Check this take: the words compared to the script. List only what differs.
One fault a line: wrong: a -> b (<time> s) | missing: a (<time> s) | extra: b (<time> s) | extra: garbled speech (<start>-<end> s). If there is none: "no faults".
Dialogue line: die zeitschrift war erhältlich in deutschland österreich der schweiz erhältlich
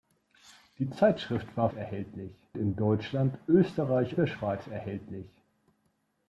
no faults